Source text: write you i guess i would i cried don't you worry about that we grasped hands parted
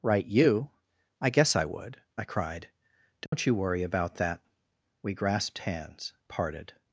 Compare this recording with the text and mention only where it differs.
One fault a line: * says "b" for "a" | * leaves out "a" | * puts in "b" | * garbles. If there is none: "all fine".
all fine